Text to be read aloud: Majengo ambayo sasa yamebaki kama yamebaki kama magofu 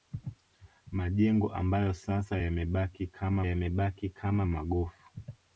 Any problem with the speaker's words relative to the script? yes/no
no